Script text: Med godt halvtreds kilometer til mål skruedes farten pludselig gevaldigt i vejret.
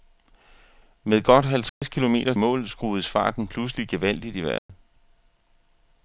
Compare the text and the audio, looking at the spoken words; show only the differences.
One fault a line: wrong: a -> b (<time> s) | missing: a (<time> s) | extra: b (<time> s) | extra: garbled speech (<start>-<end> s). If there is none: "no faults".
missing: til (2.3 s)